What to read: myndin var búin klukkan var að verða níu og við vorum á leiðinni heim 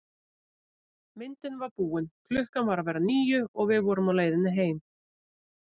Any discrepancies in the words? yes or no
no